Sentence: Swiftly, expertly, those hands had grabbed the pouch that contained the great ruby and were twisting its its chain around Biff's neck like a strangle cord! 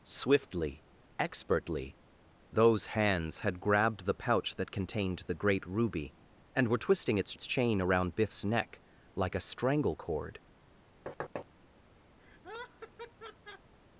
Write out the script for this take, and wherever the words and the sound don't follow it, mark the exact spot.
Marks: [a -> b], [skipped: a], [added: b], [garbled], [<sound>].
Swiftly, expertly, those hands had grabbed the pouch that contained the great ruby and were twisting its its chain around Biff's neck like a strangle cord! [thud] [laugh]